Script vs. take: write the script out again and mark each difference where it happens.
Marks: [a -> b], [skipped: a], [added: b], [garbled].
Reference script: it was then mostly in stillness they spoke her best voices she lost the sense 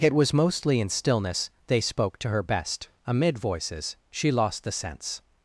it was [skipped: then] mostly in stillness they spoke [added: to] her best [added: amid] voices she lost the sense